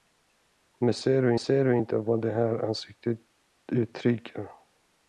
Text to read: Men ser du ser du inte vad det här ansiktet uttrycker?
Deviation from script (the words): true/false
false